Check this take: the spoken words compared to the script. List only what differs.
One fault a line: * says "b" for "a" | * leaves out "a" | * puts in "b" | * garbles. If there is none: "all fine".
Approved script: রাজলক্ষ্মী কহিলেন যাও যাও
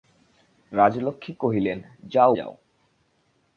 all fine